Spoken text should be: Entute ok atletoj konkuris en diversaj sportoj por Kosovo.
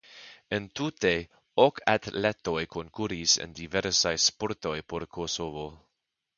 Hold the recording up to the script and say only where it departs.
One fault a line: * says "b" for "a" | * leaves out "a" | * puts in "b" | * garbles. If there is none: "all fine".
all fine